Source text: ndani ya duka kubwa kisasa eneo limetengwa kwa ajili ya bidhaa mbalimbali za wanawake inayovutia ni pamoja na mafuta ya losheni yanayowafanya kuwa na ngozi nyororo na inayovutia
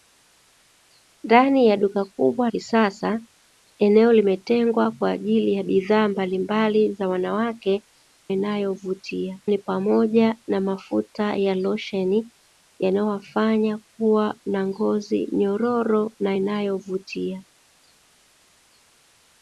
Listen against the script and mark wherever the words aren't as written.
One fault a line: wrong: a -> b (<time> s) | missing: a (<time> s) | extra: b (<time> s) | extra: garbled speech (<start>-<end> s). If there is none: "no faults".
no faults